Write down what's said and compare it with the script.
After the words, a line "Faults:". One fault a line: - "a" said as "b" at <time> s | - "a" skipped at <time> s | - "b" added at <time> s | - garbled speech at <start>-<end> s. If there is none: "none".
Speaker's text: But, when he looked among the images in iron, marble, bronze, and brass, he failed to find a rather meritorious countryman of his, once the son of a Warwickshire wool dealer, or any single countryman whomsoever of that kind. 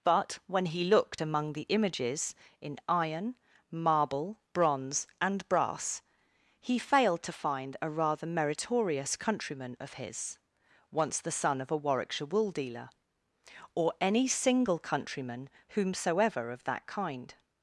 But, when he looked among the images in iron, marble, bronze, and brass, he failed to find a rather meritorious countryman of his, once the son of a Warwickshire wool dealer, or any single countryman whomsoever of that kind.
Faults:
none